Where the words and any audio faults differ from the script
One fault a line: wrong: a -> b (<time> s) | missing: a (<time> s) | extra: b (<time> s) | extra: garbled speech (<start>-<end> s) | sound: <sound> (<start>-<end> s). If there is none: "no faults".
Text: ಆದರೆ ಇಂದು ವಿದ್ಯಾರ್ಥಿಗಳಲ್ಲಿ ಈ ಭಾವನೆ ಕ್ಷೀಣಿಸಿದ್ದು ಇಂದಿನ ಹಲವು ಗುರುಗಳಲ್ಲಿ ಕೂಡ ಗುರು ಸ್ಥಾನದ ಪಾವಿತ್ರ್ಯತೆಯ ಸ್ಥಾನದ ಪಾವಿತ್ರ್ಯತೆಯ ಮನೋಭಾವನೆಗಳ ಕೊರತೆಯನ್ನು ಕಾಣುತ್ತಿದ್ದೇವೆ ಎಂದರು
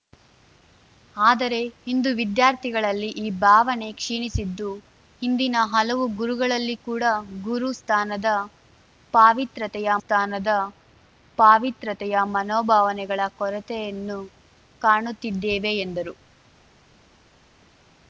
no faults